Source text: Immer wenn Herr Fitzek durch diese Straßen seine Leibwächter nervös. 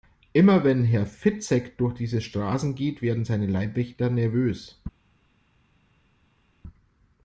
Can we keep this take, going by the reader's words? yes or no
no